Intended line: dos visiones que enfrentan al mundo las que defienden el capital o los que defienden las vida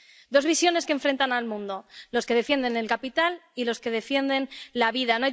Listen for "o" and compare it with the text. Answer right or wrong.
wrong